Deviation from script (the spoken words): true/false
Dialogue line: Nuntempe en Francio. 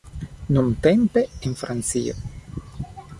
false